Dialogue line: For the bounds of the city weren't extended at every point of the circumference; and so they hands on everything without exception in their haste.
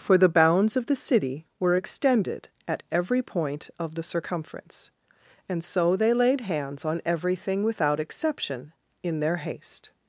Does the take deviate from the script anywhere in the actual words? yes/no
yes